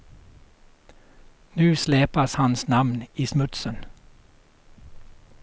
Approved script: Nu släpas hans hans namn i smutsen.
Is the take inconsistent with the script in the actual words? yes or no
yes